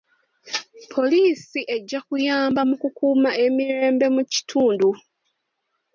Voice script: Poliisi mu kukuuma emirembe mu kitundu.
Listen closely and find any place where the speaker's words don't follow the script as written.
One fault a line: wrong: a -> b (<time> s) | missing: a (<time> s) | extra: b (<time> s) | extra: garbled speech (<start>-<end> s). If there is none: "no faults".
extra: ejja kuyamba (1.8 s)